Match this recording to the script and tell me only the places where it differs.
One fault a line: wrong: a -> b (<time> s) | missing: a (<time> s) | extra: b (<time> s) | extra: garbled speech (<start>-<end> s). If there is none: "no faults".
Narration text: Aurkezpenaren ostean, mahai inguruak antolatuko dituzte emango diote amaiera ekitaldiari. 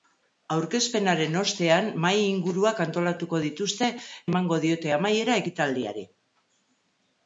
no faults